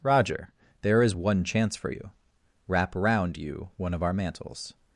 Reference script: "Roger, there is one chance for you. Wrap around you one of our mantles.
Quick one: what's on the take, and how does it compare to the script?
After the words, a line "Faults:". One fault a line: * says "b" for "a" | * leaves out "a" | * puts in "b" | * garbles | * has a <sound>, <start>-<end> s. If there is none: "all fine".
"Roger, there is one chance for you. Wrap around you one of our mantles.
Faults:
all fine